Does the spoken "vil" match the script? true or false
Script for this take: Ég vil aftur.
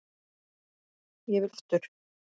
true